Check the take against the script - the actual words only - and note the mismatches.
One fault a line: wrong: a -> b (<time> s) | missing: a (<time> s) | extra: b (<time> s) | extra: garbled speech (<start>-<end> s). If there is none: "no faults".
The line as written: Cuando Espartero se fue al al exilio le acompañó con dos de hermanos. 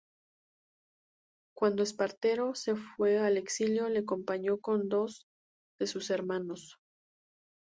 missing: al (3.4 s)
extra: sus (5.8 s)